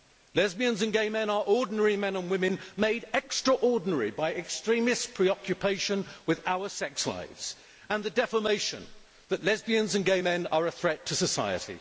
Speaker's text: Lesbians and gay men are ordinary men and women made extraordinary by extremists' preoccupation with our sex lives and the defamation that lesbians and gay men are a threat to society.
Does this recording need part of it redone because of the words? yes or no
no